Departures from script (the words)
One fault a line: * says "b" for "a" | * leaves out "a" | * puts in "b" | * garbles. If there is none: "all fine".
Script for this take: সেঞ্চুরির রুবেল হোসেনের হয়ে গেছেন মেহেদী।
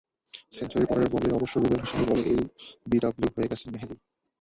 * puts in "পরের বলেই অবশ্য"
* puts in "বলে এলবিডব্লু"